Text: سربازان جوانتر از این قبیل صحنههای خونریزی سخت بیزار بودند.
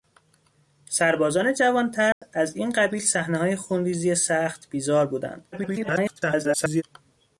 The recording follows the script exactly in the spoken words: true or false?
false